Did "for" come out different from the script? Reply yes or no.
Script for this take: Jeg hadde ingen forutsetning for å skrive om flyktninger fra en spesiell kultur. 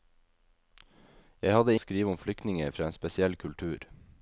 yes